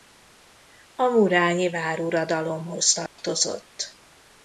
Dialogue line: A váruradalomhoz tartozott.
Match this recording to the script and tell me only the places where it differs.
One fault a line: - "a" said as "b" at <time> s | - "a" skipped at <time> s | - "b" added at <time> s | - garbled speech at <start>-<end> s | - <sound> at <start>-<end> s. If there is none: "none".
- "murányi" added at 1.0 s
- dropout at 3.1-3.2 s